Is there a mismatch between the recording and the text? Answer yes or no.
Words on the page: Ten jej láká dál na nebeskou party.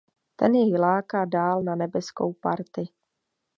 no